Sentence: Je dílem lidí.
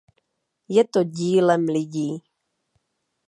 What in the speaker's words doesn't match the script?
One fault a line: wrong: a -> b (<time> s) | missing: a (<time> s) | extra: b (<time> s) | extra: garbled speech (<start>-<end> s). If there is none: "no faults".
extra: to (0.8 s)